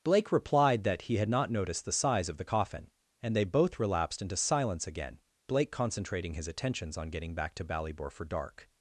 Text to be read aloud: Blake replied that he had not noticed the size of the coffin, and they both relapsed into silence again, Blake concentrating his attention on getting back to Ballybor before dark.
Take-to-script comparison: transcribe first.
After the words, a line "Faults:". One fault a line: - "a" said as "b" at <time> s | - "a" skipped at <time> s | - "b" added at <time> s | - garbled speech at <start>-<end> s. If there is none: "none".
Blake replied that he had not noticed the size of the coffin, and they both relapsed into silence again, Blake concentrating his attentions on getting back to Ballybor for dark.
Faults:
- "attention" said as "attentions" at 6.5 s
- "before" said as "for" at 8.1 s